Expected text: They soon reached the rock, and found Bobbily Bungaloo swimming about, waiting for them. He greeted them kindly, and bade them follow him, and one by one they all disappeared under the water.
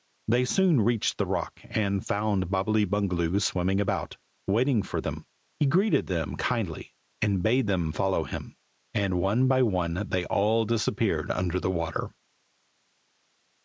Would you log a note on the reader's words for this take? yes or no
no